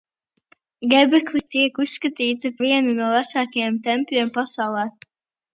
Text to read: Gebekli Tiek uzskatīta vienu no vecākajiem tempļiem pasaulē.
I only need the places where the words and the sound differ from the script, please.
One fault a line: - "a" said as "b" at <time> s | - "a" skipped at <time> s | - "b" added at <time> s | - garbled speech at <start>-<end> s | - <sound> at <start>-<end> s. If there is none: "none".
none